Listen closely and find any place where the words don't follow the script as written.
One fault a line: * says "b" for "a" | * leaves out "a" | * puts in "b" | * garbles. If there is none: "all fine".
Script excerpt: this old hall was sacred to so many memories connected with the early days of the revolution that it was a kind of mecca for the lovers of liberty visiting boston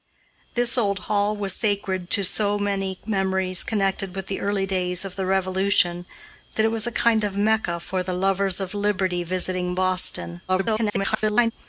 * garbles